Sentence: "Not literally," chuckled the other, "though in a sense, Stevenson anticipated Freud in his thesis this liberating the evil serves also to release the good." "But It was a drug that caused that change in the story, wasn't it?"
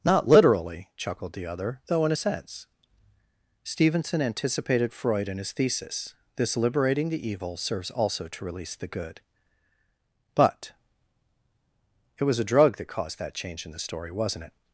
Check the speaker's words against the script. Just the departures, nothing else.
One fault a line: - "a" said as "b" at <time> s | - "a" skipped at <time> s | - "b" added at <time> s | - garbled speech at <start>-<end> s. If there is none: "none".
none